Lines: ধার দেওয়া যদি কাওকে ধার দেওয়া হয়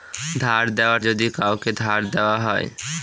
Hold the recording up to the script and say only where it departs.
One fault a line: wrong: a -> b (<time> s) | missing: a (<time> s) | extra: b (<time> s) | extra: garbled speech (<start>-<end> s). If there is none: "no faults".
no faults